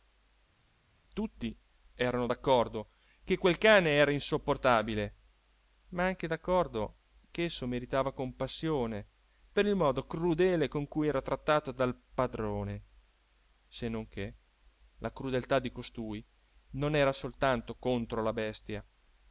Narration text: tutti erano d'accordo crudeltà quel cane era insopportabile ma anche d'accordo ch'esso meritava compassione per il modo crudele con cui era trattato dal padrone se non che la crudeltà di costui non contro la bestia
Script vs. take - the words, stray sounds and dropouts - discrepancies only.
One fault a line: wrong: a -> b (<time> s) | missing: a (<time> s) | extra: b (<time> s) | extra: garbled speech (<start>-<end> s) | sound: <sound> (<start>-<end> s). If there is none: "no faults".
wrong: crudeltà -> che (3.2 s)
extra: era soltanto (17.0 s)